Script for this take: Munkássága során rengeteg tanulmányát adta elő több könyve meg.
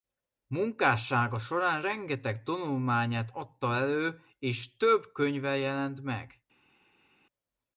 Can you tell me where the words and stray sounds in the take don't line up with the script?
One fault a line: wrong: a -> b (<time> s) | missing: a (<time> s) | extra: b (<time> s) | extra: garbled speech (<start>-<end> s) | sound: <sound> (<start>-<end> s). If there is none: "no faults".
extra: és (4.4 s)
extra: jelent (5.6 s)